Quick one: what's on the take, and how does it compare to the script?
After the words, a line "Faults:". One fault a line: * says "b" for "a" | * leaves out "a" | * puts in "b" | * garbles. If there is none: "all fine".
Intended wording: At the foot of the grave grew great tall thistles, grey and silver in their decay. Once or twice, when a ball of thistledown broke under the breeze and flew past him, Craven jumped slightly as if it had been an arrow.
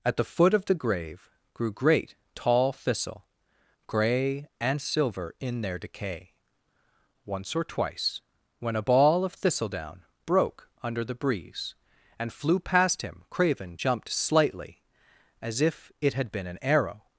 At the foot of the grave grew great tall thistle, grey and silver in their decay. Once or twice, when a ball of thistledown broke under the breeze and flew past him, Craven jumped slightly as if it had been an arrow.
Faults:
* says "thistle" for "thistles"